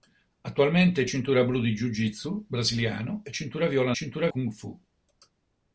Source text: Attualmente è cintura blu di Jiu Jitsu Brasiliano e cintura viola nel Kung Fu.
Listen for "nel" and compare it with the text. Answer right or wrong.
wrong